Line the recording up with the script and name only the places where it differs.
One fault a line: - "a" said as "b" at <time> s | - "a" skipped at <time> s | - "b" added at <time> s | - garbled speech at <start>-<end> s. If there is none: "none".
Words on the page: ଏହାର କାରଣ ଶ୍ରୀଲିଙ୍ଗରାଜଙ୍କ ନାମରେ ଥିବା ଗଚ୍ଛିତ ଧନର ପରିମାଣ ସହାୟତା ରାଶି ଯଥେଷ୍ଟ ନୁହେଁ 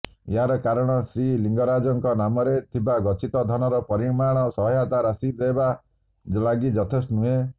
- "ଦେବା ଲାଗି" added at 5.4 s